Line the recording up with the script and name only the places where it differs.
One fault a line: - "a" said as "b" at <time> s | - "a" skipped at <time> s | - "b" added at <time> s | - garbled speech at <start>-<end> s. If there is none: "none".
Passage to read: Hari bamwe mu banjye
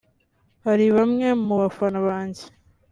- "bafana" added at 1.6 s